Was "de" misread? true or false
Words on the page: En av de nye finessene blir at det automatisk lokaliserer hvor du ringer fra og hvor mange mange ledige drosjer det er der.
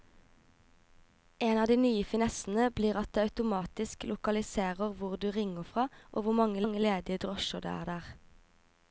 false